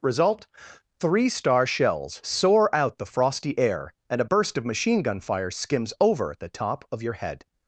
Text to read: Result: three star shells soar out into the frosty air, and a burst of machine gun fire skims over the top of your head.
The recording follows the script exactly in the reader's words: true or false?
false